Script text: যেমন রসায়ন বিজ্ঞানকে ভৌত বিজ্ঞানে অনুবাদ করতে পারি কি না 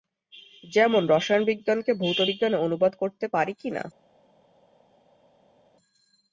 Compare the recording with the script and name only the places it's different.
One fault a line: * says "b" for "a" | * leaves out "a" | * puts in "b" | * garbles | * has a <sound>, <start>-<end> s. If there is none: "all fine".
all fine